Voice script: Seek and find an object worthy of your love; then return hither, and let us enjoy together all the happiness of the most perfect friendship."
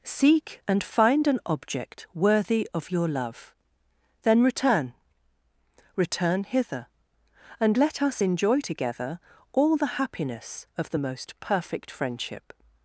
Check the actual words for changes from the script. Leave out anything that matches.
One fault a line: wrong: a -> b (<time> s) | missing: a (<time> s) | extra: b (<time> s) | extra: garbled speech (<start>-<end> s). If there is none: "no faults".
extra: return (6.0 s)